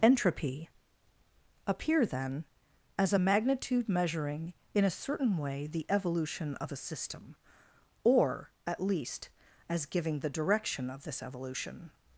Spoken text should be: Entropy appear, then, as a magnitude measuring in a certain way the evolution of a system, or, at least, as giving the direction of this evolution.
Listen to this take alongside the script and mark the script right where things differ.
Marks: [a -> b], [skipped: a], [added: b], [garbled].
Entropy appear, then, as a magnitude measuring in a certain way the evolution of a system, or, at least, as giving the direction of this evolution.